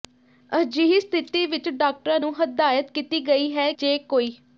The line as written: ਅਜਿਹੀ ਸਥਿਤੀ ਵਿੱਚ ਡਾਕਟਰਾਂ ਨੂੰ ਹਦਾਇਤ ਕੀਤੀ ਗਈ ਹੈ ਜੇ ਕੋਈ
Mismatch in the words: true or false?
false